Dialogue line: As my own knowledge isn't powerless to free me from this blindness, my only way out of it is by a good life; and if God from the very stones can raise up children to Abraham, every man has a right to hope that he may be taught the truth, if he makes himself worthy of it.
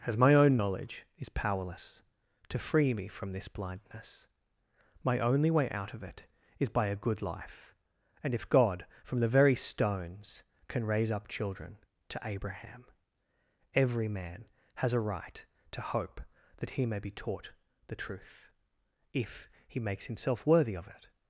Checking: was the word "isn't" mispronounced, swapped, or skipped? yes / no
yes